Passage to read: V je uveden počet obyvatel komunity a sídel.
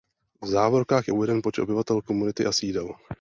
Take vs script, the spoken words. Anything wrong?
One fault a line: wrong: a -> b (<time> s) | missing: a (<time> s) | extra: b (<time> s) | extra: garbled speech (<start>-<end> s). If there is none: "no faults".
extra: závorkách (0.5 s)